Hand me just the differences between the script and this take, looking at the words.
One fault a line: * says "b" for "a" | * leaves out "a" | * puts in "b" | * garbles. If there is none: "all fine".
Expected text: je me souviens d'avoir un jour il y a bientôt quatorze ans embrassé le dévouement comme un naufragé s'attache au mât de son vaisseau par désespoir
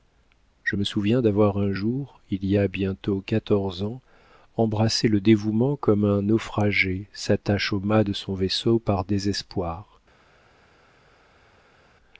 all fine